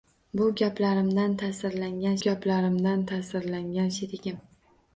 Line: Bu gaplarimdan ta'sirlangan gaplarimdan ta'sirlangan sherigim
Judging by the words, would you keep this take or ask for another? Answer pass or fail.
pass